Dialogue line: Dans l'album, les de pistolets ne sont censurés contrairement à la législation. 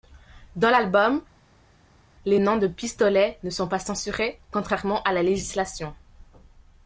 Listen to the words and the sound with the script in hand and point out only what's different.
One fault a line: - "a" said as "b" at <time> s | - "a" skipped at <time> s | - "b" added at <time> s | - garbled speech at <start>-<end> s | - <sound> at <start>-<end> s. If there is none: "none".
- "noms" added at 2.4 s
- "pas" added at 3.7 s